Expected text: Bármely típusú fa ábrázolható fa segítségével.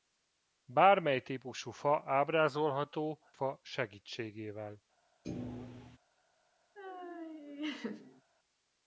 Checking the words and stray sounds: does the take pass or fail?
fail